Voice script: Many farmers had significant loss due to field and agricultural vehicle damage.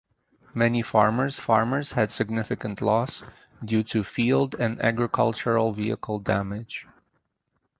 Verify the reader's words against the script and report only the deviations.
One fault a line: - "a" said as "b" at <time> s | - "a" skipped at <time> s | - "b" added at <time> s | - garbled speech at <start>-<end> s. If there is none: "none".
- "farmers" added at 1.4 s